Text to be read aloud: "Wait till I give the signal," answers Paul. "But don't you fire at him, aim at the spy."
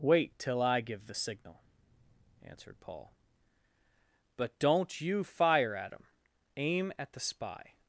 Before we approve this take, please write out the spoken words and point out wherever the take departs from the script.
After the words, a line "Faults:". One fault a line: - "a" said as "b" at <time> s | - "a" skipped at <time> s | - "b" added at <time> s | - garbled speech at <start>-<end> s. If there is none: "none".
"Wait till I give the signal," answered Paul. "But don't you fire at him, aim at the spy."
Faults:
- "answers" said as "answered" at 2.4 s